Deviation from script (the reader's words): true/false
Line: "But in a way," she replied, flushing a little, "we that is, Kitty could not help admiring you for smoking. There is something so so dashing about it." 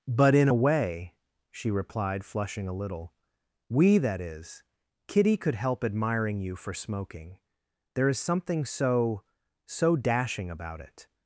true